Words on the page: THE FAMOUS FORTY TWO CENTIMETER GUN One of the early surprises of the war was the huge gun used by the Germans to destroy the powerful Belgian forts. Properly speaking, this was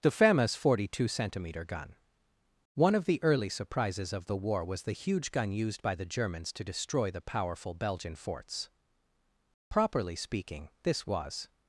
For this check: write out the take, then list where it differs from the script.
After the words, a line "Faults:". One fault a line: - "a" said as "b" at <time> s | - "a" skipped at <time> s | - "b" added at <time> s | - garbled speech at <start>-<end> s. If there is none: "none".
THE FAMOUS FORTY TWO CENTIMETER GUN One of the early surprises of the war was the huge gun used by the Germans to destroy the powerful Belgian forts. Properly speaking, this was
Faults:
none